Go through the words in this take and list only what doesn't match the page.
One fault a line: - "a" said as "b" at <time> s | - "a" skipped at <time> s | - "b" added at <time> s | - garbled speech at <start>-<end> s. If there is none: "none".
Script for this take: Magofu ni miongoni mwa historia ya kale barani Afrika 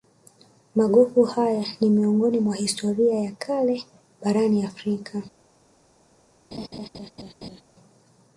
- "haya" added at 1.2 s